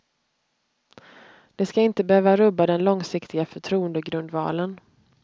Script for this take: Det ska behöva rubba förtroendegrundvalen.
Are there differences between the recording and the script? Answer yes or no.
yes